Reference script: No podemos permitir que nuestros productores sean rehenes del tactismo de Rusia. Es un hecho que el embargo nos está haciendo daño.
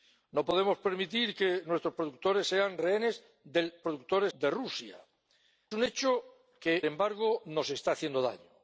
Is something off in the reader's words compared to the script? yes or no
yes